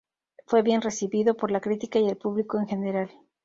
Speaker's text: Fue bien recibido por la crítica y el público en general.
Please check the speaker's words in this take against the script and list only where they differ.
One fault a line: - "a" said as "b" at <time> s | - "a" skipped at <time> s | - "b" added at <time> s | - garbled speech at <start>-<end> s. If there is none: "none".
none